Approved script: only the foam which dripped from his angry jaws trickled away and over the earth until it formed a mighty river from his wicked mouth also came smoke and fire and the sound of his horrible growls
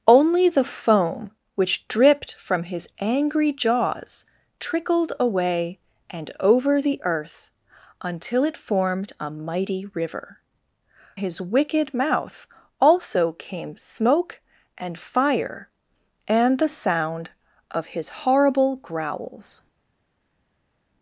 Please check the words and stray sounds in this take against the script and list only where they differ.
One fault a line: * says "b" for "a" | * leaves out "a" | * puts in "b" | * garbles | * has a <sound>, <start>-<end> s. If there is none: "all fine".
* leaves out "from"